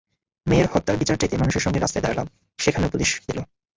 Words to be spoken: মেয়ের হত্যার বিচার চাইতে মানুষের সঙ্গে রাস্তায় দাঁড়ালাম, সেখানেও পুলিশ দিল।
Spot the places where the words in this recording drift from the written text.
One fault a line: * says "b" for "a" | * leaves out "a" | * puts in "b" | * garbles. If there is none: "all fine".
all fine